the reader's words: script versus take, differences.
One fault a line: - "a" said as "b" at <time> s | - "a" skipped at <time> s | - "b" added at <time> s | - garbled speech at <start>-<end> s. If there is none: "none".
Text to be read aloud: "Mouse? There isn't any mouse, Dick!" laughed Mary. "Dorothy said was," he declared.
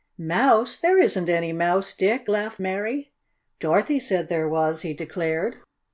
- "there" added at 4.3 s